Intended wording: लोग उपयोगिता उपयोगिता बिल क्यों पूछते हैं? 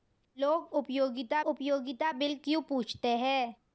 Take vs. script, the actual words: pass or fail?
pass